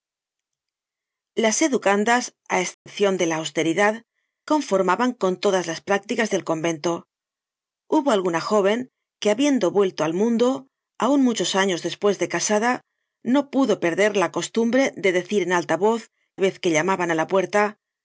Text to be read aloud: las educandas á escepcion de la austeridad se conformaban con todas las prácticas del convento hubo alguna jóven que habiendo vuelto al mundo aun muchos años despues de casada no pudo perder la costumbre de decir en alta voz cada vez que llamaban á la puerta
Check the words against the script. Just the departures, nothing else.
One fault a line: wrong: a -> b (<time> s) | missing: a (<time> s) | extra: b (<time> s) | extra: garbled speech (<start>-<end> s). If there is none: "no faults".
missing: se (4.0 s)
missing: cada (16.0 s)